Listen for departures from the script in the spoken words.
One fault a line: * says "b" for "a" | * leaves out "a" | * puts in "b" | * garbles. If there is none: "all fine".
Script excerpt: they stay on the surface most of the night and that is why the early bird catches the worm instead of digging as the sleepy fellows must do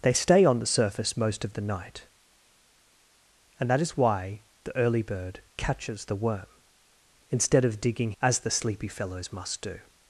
all fine